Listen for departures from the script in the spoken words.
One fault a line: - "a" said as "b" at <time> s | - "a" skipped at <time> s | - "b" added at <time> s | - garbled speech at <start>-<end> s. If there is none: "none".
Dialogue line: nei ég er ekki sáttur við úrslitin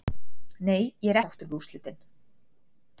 - "ekki" skipped at 1.2 s